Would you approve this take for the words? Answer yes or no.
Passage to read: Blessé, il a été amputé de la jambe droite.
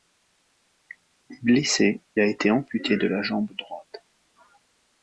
no